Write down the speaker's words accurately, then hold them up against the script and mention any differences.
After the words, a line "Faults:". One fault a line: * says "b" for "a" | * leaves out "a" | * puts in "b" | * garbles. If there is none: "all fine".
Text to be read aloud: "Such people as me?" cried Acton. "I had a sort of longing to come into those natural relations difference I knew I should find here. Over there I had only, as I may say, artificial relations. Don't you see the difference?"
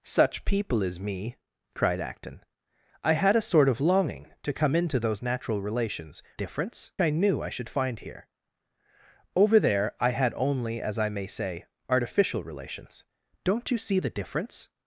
"Such people as me?" cried Acton. "I had a sort of longing to come into those natural relations difference I knew I should find here. Over there I had only, as I may say, artificial relations. Don't you see the difference?"
Faults:
all fine